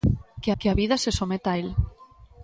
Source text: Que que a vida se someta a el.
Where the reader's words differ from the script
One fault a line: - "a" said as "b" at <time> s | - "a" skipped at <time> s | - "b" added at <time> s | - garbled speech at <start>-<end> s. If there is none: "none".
none